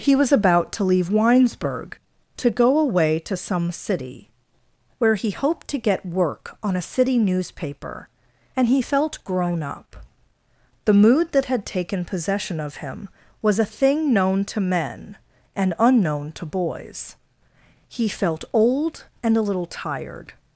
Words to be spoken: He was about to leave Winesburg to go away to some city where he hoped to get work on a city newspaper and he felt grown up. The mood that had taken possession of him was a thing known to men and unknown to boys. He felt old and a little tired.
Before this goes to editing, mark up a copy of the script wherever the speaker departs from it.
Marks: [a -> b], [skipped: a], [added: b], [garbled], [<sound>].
He was about to leave Winesburg to go away to some city where he hoped to get work on a city newspaper and he felt grown up. The mood that had taken possession of him was a thing known to men and unknown to boys. He felt old and a little tired.